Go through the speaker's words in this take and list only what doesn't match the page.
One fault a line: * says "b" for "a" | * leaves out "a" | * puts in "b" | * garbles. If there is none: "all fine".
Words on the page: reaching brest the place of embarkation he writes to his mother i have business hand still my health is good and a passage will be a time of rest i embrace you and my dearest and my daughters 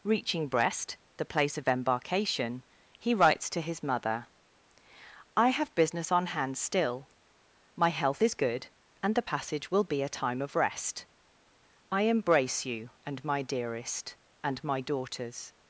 * puts in "on"
* says "the" for "a"